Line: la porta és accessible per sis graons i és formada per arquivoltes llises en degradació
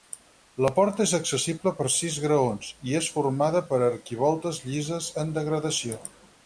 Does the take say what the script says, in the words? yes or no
yes